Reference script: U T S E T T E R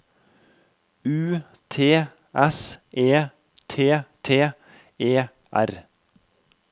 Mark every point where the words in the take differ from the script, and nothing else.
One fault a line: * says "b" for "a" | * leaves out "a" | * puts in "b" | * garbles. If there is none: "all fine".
all fine